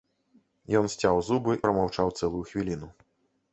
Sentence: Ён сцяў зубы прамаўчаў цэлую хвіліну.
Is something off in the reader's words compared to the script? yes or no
no